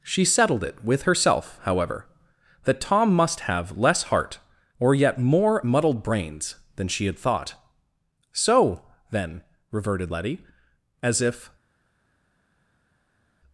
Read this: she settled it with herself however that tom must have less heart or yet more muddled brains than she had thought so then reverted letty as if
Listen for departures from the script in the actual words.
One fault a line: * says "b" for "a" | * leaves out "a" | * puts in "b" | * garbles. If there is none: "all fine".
all fine